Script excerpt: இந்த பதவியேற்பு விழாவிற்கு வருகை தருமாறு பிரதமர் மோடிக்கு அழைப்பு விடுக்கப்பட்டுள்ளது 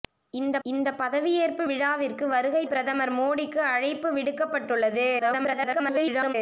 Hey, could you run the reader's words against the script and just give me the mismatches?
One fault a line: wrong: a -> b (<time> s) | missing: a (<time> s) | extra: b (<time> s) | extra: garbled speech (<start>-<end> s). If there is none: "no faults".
extra: இந்த (0.6 s)
missing: தருமாறு (2.6 s)
extra: garbled speech (5.2-6.3 s)